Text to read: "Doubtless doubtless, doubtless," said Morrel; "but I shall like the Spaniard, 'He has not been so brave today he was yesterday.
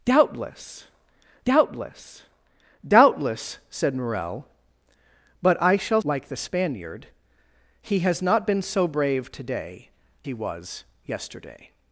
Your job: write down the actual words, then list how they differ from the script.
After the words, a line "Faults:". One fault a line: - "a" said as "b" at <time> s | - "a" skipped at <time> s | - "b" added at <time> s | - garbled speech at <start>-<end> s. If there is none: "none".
"Doubtless doubtless, doubtless," said Morrel; "but I shall like the Spaniard, 'He has not been so brave today he was yesterday.
Faults:
none